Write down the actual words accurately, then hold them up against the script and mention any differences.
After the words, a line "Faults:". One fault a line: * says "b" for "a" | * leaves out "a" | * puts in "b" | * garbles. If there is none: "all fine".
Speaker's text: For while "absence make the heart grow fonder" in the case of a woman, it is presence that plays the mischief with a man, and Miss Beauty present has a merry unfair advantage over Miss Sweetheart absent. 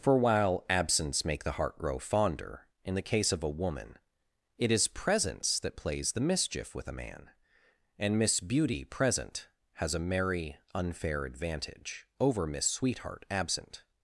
For while "absence make the heart grow fonder" in the case of a woman, it is presence that plays the mischief with a man, and Miss Beauty present has a merry unfair advantage over Miss Sweetheart absent.
Faults:
all fine